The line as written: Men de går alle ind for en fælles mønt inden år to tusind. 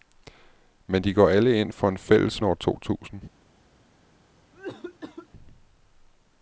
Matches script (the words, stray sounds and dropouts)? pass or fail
fail